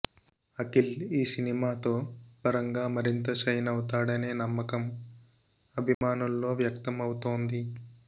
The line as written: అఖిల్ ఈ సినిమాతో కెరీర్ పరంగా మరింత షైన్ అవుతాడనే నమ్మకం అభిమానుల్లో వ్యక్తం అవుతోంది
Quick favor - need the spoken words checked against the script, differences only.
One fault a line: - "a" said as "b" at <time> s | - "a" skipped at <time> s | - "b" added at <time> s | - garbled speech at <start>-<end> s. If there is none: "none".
- "కెరీర్" skipped at 1.9 s